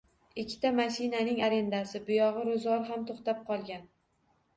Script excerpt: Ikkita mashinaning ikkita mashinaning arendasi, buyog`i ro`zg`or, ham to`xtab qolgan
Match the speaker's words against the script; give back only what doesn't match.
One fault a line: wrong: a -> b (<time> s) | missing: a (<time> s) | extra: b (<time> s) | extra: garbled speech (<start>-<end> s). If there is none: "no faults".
missing: ikkita mashinaning (1.4 s)